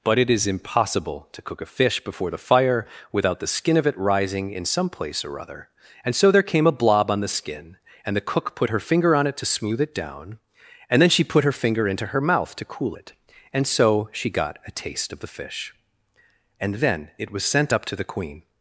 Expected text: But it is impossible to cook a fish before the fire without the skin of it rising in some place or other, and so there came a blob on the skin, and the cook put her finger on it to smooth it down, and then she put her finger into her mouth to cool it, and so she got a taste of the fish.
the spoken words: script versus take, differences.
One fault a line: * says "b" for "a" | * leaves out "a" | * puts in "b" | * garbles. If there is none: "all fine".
* puts in "And then it was sent up to the queen"